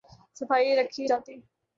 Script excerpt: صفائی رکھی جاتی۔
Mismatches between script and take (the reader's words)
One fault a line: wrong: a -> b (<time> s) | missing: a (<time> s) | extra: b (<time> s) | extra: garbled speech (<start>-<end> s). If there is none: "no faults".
no faults